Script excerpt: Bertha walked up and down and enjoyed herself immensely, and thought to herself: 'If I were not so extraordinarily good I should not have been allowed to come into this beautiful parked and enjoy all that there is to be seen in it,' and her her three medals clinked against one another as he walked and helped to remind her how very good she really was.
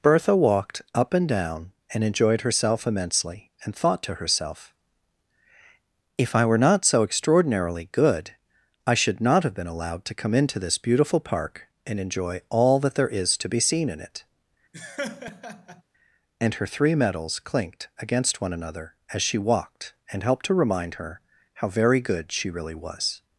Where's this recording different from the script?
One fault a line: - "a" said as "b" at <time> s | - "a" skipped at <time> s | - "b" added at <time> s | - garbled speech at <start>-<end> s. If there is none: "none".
- "parked" said as "park" at 11.2 s
- "her" skipped at 16.7 s
- "he" said as "she" at 19.2 s